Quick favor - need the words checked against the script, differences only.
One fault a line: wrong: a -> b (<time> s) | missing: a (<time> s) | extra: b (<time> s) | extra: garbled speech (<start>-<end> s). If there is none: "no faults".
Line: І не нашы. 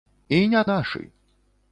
no faults